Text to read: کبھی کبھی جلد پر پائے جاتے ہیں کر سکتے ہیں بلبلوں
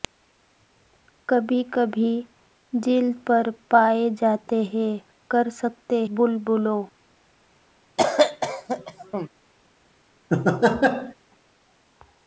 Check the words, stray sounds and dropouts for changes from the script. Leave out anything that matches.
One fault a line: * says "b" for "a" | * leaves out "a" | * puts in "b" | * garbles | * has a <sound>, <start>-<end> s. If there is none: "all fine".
* leaves out "ہیں"
* has a cough, 8.0-9.3 s
* has a laugh, 10.3-11.1 s